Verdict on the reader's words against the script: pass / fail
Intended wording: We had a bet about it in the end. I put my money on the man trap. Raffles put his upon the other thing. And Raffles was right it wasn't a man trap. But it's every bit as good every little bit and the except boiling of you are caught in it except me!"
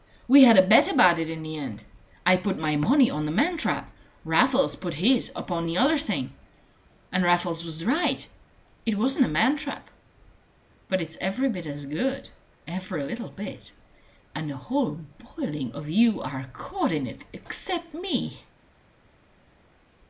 fail